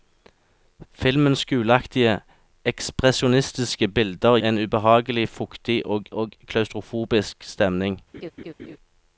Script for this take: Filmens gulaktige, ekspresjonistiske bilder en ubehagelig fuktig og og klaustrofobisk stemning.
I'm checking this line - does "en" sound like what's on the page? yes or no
yes